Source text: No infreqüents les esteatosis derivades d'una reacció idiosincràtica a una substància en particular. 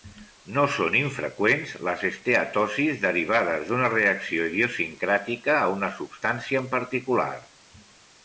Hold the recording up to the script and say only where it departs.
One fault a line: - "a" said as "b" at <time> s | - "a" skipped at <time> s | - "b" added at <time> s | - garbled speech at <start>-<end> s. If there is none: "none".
- "són" added at 0.8 s